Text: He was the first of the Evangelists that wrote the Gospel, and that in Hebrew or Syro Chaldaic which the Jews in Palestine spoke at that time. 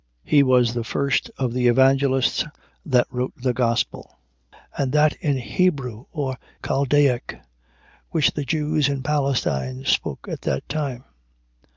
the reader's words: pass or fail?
fail